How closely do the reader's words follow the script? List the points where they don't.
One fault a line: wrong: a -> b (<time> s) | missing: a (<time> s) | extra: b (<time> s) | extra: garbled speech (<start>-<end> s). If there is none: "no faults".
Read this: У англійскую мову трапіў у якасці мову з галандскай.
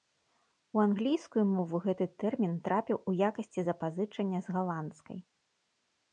extra: гэты тэрмін (1.9 s)
wrong: мову -> запазычання (3.7 s)